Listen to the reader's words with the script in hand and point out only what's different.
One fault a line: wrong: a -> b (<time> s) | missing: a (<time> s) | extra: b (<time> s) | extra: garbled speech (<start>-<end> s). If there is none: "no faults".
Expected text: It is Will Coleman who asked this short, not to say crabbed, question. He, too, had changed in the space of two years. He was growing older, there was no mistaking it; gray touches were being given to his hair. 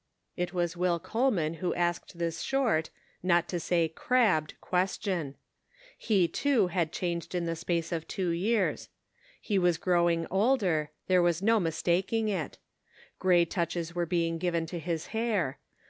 wrong: is -> was (0.5 s)